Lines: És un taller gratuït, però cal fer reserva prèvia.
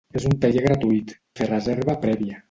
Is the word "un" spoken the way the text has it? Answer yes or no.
yes